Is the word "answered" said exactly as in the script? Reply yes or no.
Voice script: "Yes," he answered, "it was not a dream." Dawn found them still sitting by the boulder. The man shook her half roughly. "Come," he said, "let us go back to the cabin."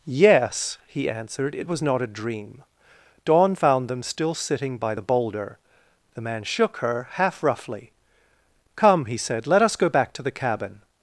yes